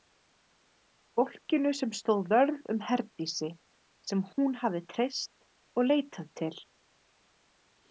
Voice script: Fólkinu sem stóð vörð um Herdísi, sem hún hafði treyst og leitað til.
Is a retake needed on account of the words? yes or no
no